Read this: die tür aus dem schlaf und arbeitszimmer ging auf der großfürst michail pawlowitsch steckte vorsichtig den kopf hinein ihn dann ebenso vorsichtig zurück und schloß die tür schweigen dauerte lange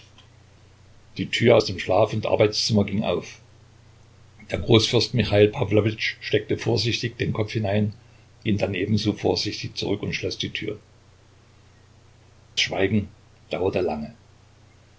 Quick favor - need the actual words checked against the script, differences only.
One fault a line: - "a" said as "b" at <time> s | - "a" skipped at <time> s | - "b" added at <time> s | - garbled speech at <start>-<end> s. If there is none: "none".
none